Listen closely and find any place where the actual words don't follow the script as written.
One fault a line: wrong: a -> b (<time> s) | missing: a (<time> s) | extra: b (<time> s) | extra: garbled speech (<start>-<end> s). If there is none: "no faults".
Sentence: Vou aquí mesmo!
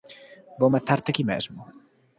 extra: matarte (0.7 s)